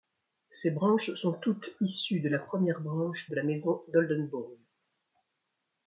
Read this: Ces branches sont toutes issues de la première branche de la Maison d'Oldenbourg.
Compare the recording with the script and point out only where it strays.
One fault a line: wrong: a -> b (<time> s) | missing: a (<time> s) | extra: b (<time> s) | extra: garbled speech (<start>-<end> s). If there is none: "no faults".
no faults